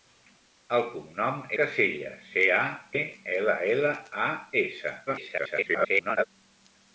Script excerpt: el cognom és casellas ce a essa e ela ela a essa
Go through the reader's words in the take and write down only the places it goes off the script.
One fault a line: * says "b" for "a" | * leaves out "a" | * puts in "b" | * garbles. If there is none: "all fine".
* leaves out "és"
* leaves out "essa"
* garbles